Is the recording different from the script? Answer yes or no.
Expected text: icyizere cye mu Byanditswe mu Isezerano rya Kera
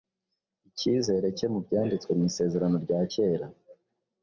no